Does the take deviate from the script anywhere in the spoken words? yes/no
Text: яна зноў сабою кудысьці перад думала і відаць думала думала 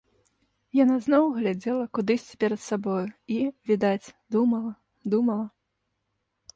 yes